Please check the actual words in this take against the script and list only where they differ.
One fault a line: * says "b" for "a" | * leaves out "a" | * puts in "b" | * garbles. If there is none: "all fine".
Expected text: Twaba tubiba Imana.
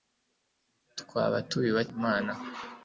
all fine